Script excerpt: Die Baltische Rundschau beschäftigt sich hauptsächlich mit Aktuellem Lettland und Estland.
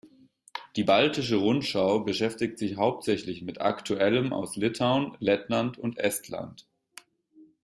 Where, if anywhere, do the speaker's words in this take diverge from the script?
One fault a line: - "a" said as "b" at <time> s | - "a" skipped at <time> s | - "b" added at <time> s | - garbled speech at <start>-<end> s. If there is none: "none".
- "aus Litauen" added at 4.3 s